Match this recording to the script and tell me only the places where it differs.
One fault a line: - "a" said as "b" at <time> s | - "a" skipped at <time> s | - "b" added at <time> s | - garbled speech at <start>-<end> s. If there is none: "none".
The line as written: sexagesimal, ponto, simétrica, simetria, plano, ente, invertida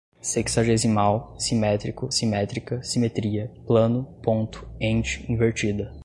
- "ponto" said as "simétrico" at 1.4 s
- "ponto" added at 4.2 s